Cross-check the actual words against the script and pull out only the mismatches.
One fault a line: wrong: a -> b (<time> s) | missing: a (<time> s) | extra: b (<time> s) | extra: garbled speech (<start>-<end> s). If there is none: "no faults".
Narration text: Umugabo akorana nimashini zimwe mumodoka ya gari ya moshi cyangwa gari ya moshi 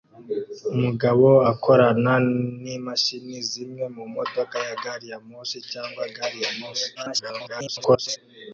extra: garbled speech (6.9-8.2 s)